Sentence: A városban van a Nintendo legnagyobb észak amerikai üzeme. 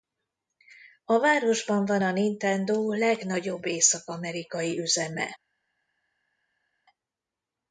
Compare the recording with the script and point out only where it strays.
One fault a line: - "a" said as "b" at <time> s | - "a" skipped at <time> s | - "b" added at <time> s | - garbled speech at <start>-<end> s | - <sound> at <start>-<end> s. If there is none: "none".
none